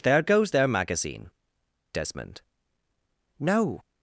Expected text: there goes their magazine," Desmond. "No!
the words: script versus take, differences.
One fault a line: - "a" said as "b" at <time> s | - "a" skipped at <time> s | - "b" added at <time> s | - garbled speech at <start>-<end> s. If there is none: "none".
none